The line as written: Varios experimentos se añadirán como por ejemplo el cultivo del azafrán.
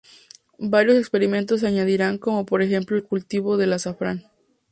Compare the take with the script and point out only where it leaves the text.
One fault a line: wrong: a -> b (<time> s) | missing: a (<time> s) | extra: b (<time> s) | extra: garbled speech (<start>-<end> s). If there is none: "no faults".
no faults